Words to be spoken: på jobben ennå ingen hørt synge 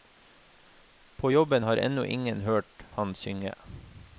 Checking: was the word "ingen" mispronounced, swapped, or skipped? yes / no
no